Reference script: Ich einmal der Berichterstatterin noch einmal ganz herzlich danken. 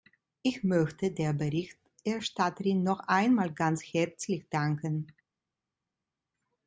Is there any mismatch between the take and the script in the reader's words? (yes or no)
yes